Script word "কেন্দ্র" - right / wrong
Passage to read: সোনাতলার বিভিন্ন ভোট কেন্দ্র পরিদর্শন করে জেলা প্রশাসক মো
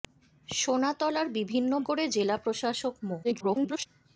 wrong